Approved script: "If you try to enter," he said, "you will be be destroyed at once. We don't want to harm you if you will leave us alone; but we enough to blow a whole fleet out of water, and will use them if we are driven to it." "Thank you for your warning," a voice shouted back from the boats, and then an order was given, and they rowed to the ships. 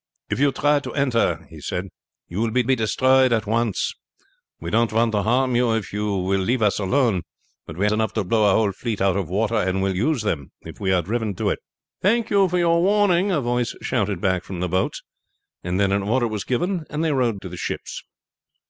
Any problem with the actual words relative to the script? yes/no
no